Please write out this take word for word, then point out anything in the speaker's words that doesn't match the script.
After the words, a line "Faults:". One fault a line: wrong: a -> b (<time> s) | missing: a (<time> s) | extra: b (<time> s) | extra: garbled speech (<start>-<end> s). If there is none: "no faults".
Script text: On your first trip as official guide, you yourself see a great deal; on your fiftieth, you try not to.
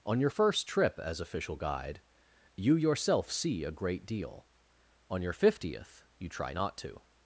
On your first trip as official guide, you yourself see a great deal; on your fiftieth, you try not to.
Faults:
no faults